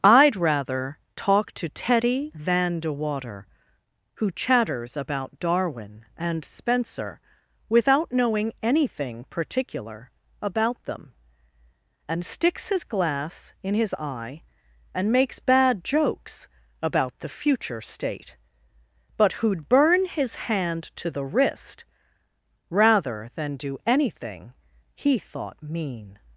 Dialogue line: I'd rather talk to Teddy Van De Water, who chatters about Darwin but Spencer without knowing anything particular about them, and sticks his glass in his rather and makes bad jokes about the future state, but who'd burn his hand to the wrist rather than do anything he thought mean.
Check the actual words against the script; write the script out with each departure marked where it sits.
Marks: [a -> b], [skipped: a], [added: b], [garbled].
I'd rather talk to Teddy Van De Water, who chatters about Darwin [but -> and] Spencer without knowing anything particular about them, and sticks his glass in his [rather -> eye] and makes bad jokes about the future state, but who'd burn his hand to the wrist rather than do anything he thought mean.